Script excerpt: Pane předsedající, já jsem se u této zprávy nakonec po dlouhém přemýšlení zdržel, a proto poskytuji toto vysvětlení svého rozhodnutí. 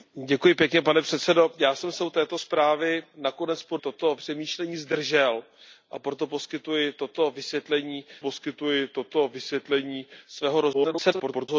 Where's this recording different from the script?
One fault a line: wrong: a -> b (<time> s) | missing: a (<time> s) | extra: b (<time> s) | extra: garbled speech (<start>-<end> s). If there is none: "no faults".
wrong: dlouhém -> toto (3.8 s)
extra: poskytuji toto vysvětlení (8.2 s)
extra: garbled speech (10.7-11.5 s)